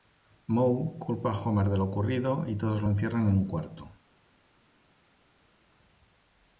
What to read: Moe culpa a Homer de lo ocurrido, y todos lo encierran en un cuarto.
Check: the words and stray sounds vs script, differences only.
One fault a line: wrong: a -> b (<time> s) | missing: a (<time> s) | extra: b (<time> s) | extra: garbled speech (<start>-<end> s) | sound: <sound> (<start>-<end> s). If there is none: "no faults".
no faults